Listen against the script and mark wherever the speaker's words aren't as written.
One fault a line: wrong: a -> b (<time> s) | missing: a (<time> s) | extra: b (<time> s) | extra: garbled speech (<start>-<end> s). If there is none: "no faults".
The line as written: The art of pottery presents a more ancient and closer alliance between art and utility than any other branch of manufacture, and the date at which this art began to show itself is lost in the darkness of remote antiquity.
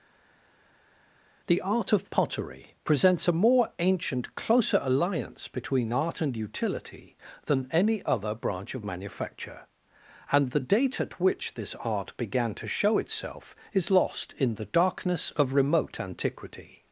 missing: and (4.3 s)